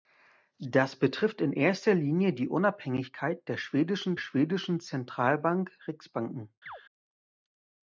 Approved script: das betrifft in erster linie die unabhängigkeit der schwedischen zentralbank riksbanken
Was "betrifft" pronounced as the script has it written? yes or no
yes